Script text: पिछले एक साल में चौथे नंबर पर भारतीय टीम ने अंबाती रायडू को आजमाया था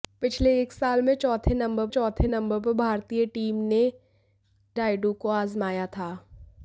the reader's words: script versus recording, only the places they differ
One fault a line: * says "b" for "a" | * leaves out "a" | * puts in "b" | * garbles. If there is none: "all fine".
* puts in "चौथे नंबर"
* leaves out "अंबाती"